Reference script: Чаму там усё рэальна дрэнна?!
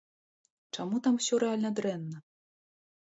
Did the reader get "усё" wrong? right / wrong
right